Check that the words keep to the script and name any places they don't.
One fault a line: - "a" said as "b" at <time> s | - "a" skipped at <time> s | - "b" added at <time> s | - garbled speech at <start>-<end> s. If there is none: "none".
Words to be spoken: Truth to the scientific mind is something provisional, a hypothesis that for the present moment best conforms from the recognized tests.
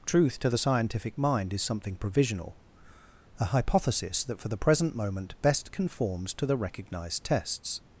- "from" said as "to" at 6.3 s